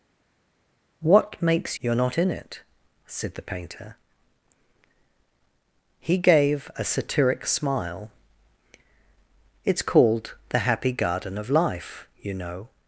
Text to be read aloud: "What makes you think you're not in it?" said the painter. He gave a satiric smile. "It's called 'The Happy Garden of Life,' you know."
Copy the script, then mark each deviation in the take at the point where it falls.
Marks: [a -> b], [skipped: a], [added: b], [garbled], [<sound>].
"What makes [skipped: you think] you're not in it?" said the painter. He gave a satiric smile. "It's called 'The Happy Garden of Life,' you know."